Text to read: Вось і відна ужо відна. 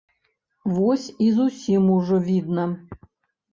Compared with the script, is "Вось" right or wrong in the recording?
right